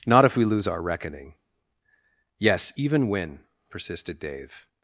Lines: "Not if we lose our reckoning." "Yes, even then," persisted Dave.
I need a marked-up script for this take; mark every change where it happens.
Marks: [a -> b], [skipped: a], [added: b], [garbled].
"Not if we lose our reckoning." "Yes, even [then," -> when] persisted Dave.